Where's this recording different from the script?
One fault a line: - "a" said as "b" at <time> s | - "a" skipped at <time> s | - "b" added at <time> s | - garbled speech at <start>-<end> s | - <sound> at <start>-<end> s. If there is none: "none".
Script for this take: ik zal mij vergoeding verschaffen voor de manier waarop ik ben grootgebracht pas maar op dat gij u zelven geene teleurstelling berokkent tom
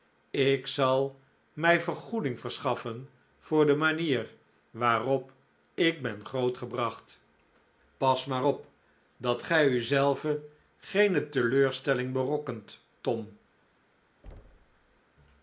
- thud at 14.2-15.0 s